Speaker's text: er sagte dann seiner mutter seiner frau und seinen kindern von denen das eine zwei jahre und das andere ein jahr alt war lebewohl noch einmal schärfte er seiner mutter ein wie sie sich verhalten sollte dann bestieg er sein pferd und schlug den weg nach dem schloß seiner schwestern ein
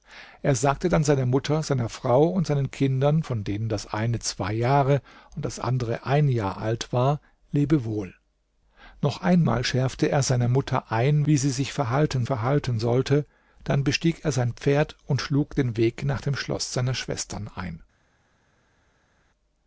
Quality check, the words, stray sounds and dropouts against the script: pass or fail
fail